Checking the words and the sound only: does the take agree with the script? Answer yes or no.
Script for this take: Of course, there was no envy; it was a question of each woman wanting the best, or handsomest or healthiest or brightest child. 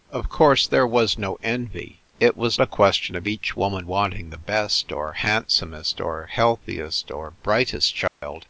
no